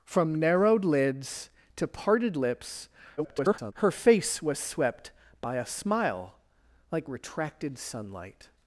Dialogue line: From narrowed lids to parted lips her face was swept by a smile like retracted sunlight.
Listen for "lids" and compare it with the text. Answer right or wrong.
right